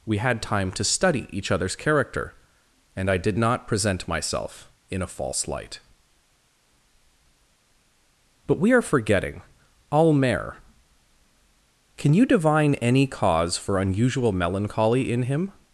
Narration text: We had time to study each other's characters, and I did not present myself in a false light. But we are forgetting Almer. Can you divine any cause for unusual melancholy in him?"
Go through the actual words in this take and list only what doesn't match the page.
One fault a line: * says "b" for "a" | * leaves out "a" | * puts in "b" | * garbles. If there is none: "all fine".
* says "character" for "characters"